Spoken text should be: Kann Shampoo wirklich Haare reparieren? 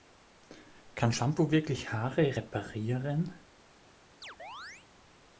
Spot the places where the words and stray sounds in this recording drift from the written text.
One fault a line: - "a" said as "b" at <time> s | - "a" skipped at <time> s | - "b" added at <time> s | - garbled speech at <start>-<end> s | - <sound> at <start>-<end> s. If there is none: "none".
- chirp at 4.2-4.9 s